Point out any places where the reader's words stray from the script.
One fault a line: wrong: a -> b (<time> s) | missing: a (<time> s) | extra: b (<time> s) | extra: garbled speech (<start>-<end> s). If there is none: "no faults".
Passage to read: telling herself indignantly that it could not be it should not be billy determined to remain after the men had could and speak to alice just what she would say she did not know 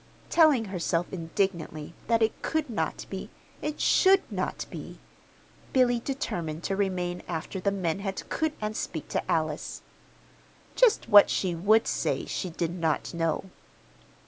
no faults